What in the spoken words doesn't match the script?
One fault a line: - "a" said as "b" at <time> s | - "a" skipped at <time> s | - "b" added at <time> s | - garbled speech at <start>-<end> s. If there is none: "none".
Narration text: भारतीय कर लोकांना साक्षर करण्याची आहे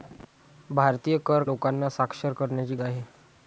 none